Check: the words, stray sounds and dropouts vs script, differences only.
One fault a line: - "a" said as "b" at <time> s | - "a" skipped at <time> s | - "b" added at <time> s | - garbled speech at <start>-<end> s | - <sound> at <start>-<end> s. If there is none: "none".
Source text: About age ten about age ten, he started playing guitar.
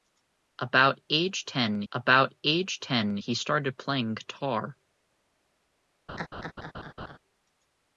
- laugh at 6.1-7.2 s